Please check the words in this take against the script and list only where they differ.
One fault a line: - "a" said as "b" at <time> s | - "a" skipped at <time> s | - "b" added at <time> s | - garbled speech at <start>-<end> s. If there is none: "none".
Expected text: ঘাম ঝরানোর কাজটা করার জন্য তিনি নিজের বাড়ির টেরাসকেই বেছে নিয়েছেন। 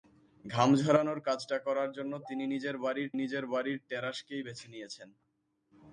- "নিজের বাড়ির" added at 3.2 s